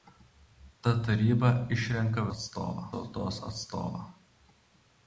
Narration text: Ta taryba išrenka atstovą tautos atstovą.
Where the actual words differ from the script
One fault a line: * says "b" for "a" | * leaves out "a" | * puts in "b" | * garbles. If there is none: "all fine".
all fine